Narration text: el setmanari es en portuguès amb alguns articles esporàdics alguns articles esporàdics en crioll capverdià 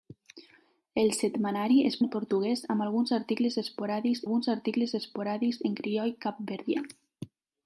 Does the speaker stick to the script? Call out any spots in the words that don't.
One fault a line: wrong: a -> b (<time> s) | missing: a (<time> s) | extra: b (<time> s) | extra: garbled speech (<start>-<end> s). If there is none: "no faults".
no faults